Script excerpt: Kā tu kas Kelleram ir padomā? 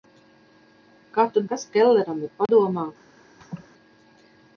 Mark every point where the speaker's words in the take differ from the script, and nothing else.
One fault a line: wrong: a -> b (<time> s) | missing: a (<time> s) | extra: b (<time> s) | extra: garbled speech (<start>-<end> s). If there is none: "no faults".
no faults